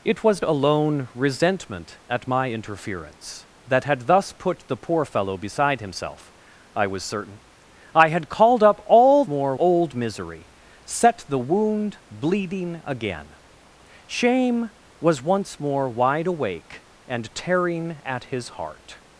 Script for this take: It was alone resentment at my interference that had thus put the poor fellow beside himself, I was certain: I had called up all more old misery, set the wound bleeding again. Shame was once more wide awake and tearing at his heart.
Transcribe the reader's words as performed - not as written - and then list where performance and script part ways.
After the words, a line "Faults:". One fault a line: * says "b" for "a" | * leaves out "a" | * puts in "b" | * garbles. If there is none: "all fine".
It was alone resentment at my interference that had thus put the poor fellow beside himself, I was certain: I had called up all more old misery, set the wound bleeding again. Shame was once more wide awake and tearing at his heart.
Faults:
all fine